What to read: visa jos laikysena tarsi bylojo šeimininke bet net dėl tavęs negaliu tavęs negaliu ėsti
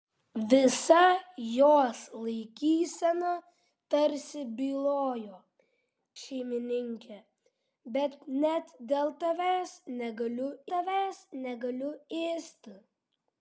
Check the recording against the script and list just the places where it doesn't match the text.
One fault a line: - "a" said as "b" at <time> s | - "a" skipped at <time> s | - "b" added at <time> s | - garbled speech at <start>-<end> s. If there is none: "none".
none